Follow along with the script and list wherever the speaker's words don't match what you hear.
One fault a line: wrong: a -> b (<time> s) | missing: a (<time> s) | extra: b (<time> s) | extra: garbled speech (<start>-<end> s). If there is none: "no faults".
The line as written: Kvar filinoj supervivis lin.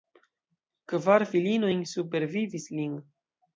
no faults